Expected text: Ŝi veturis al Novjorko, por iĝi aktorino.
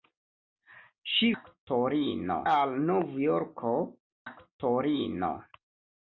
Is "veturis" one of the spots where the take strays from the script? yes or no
yes